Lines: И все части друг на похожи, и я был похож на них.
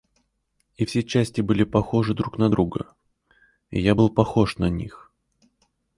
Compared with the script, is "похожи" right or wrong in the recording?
wrong